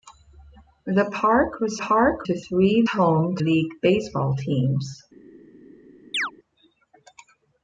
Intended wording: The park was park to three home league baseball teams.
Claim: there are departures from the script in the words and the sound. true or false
true